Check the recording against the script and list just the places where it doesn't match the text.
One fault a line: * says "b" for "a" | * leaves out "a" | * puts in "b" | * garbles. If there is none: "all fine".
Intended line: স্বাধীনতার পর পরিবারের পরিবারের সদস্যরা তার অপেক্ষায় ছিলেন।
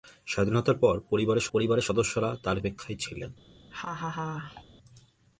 all fine